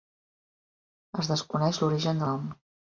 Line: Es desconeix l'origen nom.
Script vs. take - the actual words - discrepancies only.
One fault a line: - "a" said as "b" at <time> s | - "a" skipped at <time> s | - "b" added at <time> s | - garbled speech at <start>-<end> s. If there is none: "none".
none